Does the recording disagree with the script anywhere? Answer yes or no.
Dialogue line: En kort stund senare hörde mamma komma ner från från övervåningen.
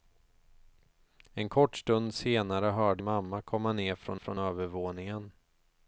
no